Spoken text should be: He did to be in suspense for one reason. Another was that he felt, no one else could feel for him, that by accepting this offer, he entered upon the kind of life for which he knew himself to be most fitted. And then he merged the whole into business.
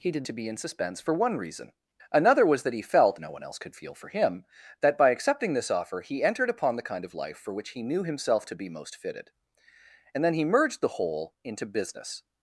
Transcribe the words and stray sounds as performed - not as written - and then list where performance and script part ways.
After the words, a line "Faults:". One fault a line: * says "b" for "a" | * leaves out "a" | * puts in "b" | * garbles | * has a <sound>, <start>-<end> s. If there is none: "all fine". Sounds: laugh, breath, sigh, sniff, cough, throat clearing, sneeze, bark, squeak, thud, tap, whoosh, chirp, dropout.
He did to be in suspense for one reason. Another was that he felt, no one else could feel for him, that by accepting this offer, he entered upon the kind of life for which he knew himself to be most fitted. And then he merged the whole into business.
Faults:
all fine